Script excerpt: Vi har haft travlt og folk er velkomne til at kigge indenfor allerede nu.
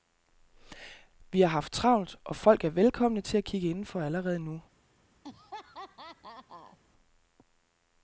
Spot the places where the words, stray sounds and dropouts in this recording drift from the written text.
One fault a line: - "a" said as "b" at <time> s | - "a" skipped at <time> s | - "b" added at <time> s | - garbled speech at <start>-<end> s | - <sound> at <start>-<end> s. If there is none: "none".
- laugh at 5.2-6.8 s